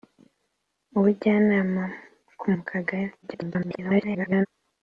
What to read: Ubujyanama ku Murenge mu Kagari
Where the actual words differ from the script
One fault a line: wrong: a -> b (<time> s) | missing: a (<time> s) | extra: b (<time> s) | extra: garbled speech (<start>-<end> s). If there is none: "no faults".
missing: Murenge (2.5 s)
extra: garbled speech (3.2-4.5 s)